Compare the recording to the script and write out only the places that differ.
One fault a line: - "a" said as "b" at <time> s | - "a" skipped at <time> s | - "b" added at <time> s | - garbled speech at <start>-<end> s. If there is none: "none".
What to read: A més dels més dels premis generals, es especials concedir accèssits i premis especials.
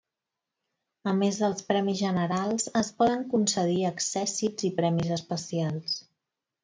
- "més dels" skipped at 1.6 s
- "especials" said as "poden" at 3.0 s